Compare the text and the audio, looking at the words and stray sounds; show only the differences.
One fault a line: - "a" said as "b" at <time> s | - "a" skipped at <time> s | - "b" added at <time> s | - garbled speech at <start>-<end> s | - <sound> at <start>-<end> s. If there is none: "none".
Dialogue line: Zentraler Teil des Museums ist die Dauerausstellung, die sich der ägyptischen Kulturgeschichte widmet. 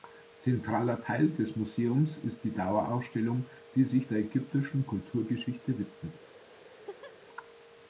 - laugh at 6.6-7.1 s